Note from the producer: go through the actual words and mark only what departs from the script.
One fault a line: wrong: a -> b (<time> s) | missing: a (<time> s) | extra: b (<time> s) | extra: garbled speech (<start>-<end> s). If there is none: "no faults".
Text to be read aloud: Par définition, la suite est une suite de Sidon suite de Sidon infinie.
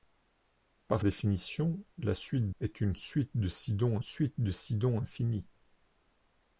no faults